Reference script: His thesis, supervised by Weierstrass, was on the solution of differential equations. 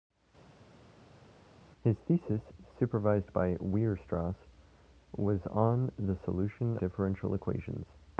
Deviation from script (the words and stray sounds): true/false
true